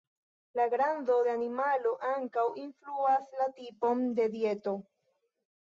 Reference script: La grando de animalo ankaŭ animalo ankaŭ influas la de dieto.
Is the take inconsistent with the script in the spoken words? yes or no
yes